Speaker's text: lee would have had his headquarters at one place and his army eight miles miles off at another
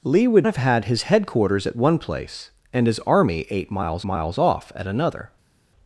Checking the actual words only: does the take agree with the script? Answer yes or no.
yes